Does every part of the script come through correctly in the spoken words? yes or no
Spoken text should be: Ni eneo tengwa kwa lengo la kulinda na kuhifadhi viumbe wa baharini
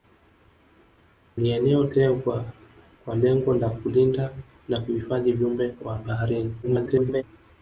no